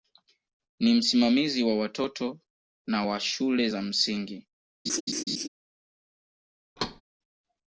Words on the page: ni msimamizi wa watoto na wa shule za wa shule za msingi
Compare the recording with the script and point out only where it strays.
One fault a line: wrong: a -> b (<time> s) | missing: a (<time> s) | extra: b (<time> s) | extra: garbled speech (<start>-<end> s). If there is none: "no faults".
missing: wa shule za (3.8 s)